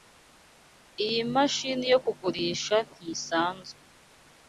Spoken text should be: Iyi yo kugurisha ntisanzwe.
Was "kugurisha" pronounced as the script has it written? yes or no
yes